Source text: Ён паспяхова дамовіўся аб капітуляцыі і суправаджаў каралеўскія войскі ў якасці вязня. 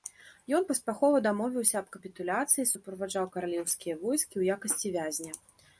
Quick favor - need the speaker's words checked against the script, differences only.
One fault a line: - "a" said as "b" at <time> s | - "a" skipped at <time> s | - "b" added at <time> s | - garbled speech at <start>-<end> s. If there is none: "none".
none